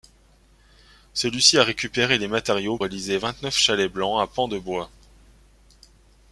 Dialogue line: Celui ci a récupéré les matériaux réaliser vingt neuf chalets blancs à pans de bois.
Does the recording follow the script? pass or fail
pass